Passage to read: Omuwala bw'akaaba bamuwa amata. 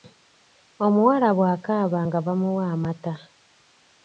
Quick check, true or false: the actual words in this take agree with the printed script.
false